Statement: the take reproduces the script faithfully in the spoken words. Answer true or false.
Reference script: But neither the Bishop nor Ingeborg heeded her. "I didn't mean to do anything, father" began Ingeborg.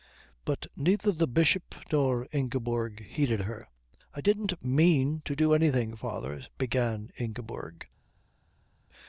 true